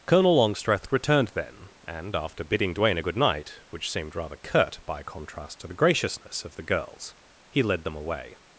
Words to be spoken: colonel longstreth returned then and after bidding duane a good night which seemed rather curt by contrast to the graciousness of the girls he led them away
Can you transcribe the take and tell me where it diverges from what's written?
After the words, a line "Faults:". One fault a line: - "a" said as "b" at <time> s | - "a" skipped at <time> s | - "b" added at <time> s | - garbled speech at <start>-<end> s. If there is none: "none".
colonel longstreth returned then and after bidding duane a good night which seemed rather curt by contrast to the graciousness of the girls he led them away
Faults:
none